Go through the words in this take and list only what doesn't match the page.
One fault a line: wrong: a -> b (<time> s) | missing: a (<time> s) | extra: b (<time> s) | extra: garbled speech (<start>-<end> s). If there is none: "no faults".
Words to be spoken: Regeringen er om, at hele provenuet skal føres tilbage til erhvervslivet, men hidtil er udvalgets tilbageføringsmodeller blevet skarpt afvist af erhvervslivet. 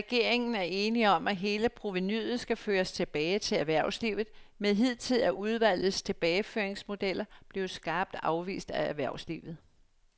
extra: enig (0.6 s)